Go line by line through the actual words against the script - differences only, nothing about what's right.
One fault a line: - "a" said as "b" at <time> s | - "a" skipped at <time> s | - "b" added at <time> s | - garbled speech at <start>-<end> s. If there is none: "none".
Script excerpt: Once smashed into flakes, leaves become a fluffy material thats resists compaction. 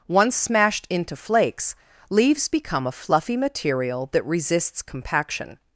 - "thats" said as "that" at 4.1 s